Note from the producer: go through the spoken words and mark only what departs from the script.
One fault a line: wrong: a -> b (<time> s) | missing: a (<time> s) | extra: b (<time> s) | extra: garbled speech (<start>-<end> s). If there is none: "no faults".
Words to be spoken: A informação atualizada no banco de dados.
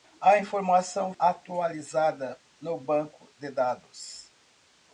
no faults